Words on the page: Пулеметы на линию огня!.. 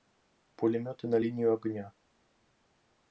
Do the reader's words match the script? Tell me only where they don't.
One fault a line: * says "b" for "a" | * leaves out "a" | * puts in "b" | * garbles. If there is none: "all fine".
all fine